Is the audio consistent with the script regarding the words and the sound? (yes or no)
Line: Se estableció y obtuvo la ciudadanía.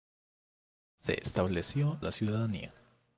no